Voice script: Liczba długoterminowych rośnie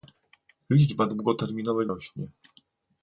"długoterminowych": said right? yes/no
yes